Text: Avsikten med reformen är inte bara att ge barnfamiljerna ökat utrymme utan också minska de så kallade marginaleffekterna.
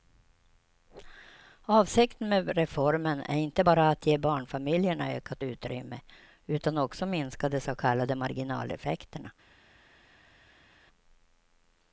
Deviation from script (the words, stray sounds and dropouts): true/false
false